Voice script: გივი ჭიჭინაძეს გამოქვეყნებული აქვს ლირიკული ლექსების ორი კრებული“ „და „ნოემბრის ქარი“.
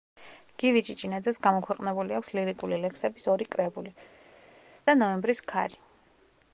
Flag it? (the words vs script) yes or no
no